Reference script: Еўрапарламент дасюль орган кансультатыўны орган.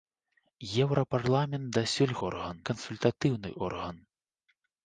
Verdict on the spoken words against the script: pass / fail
pass